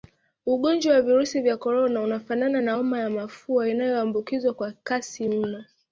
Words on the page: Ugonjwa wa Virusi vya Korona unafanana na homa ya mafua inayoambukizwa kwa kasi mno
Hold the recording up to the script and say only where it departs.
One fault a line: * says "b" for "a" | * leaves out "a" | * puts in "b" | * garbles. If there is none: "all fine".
all fine